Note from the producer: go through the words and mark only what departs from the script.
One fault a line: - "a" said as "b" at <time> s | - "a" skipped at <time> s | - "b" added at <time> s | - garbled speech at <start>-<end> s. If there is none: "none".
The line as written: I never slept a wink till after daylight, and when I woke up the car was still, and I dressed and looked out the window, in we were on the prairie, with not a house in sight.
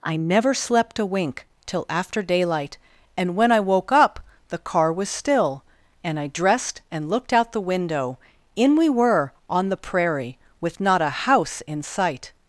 none